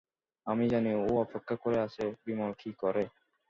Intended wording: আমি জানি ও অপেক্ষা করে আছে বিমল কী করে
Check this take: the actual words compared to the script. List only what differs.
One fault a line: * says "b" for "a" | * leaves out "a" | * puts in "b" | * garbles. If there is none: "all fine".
all fine